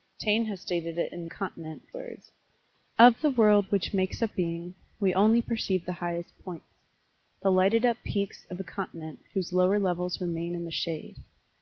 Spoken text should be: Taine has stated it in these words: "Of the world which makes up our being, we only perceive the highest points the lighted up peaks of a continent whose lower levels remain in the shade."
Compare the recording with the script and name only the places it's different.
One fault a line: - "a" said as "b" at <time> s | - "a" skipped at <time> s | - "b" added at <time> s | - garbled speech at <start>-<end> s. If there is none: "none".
- "these" said as "continent" at 1.3 s
- "our" skipped at 4.3 s